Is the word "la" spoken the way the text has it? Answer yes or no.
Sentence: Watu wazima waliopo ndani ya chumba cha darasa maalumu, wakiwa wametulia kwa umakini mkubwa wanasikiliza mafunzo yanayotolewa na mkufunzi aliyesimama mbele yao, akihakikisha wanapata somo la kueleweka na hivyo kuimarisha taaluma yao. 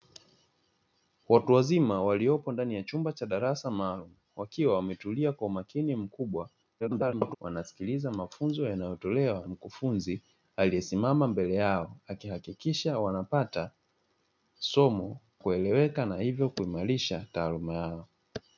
no